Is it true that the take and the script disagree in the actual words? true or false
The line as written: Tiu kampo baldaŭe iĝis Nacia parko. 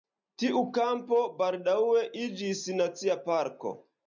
false